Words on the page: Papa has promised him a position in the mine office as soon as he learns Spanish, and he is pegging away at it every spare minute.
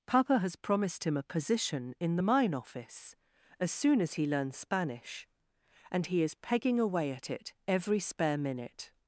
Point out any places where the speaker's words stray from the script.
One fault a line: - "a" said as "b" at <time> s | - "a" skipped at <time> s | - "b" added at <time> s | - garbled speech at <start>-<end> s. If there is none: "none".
none